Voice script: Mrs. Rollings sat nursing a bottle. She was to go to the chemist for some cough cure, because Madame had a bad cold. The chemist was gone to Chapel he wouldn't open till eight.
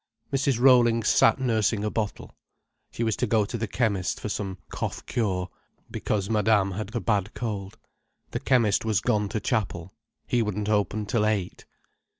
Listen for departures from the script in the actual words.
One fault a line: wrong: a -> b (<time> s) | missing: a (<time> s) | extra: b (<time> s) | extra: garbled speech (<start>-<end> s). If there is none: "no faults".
no faults